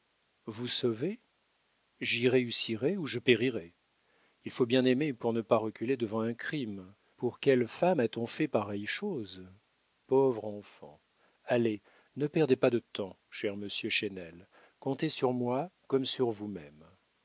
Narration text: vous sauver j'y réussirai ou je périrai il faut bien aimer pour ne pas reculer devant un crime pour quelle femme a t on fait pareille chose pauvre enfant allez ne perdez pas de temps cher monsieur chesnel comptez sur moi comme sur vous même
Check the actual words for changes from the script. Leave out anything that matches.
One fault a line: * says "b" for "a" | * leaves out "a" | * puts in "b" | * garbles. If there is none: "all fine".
all fine